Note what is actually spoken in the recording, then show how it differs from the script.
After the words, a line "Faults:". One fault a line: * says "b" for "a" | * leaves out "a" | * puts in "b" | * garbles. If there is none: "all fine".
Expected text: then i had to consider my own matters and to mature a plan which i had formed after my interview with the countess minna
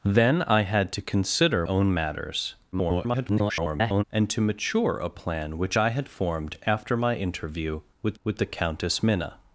then i had to consider own matters [garbled] and to mature a plan which i had formed after my interview with with the countess minna
Faults:
* leaves out "my"
* garbles
* puts in "with"